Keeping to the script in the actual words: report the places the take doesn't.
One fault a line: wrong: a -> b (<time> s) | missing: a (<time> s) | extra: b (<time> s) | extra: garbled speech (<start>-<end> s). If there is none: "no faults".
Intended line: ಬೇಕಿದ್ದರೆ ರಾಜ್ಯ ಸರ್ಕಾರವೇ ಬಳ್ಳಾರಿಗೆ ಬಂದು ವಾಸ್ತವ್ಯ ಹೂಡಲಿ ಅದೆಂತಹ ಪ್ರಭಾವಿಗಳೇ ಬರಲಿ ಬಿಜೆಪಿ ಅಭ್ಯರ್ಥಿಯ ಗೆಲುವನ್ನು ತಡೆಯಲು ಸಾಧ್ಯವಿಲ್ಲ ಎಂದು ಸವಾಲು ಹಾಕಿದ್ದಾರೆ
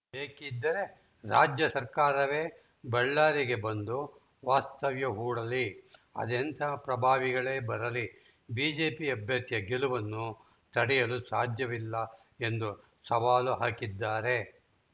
no faults